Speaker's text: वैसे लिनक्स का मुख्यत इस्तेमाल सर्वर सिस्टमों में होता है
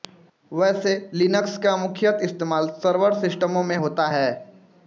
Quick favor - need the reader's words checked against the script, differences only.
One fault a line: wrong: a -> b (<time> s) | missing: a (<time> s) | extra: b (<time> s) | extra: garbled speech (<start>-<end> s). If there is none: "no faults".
no faults